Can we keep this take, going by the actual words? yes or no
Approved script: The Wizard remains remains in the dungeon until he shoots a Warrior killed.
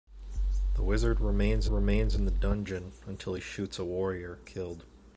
yes